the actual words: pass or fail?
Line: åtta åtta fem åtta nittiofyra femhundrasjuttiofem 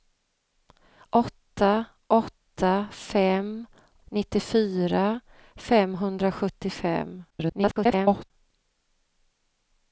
fail